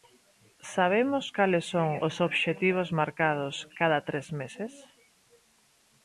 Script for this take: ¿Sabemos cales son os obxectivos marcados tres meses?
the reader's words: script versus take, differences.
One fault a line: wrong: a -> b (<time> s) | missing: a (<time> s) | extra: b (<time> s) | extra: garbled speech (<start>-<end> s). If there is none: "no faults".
extra: cada (3.8 s)